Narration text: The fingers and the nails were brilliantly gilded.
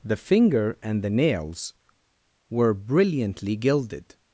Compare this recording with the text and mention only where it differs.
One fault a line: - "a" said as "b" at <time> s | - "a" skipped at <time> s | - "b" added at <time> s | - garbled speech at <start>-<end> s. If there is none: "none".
- "fingers" said as "finger" at 0.2 s